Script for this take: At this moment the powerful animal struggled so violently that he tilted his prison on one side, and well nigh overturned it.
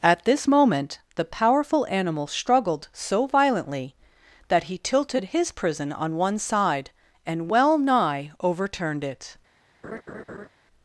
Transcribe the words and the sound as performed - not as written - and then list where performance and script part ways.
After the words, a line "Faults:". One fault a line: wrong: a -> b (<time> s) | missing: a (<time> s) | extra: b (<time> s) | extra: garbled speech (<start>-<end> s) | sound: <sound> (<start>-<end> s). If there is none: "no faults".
At this moment the powerful animal struggled so violently that he tilted his prison on one side, and well nigh overturned it.
Faults:
sound: laugh (9.8-10.5 s)